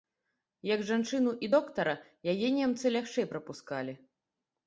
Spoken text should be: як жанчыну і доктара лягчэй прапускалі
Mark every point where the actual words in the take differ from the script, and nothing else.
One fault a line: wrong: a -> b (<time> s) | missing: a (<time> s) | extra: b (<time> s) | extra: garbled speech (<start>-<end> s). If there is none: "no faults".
extra: яе немцы (2.3 s)